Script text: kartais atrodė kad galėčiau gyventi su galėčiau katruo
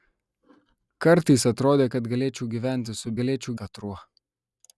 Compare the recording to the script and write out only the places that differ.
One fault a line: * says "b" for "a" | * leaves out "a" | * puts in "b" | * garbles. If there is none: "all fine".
all fine